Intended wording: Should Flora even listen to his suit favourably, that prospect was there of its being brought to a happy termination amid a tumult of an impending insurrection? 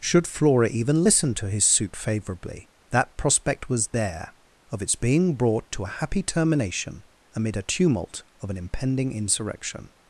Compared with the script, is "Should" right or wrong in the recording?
right